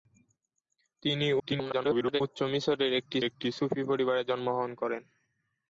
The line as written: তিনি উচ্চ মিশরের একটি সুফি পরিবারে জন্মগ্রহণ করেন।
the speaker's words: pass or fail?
fail